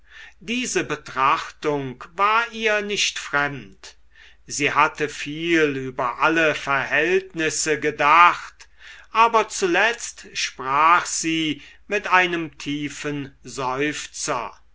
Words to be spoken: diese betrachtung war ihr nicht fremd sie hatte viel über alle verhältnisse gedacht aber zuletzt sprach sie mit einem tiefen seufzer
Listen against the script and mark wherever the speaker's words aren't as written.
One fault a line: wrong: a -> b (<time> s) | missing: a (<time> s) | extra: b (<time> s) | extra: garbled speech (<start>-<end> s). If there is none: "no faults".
no faults